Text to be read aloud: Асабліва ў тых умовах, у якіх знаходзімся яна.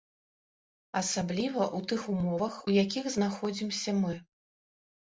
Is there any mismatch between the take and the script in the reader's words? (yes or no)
yes